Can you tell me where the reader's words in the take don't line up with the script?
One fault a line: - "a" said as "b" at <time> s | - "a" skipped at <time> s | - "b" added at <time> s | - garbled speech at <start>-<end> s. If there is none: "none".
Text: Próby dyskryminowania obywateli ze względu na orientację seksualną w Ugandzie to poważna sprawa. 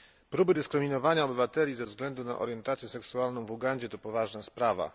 none